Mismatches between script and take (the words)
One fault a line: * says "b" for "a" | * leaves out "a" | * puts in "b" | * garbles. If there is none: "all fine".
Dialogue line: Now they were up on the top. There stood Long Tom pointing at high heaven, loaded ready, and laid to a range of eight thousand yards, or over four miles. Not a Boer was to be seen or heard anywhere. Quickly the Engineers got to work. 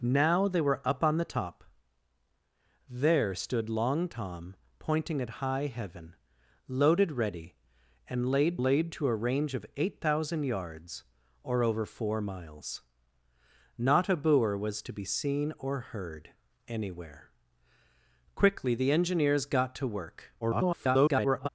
* puts in "laid"
* garbles